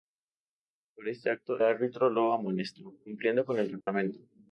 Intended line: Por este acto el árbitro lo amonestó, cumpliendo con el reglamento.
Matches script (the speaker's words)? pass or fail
fail